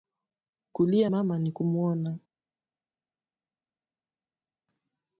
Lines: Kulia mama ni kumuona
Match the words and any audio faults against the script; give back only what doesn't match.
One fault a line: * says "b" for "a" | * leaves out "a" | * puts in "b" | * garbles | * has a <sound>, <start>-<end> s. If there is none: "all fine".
all fine